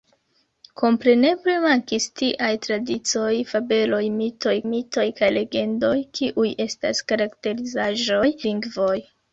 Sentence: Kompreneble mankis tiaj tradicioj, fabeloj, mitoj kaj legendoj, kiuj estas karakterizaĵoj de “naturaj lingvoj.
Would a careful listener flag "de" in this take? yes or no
yes